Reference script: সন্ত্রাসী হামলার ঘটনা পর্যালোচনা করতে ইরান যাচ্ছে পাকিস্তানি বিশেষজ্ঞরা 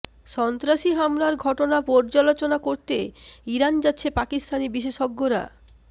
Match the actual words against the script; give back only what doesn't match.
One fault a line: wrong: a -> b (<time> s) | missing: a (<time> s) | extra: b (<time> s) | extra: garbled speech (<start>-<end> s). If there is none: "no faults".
no faults